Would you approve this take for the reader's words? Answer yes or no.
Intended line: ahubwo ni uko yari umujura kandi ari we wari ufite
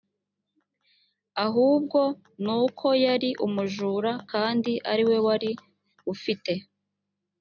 yes